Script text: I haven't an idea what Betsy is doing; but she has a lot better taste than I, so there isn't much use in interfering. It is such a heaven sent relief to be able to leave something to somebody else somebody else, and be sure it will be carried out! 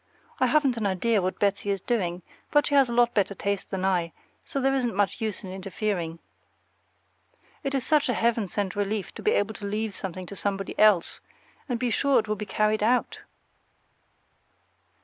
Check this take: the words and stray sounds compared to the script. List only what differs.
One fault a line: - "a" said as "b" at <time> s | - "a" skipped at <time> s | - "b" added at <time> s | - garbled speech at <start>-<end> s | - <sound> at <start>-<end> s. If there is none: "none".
- "somebody else" skipped at 11.2 s